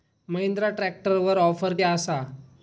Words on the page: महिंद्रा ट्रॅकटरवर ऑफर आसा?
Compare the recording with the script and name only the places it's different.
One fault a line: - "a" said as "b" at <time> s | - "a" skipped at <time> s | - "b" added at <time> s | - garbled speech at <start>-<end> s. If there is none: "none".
none